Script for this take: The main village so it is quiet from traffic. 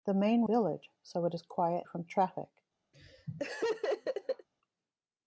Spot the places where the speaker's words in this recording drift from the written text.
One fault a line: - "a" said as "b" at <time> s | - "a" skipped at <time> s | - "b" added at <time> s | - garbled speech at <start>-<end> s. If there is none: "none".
none